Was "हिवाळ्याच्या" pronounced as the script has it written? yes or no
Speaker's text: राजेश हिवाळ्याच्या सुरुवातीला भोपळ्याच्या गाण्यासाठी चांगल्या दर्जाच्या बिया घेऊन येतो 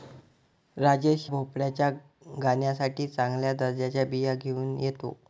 no